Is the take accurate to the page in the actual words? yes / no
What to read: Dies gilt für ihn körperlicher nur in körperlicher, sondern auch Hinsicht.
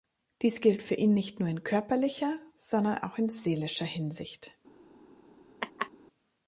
no